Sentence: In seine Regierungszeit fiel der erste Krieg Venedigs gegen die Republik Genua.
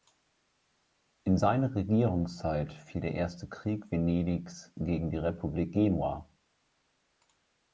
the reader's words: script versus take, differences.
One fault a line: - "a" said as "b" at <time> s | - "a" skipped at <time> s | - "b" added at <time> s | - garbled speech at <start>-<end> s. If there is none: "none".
none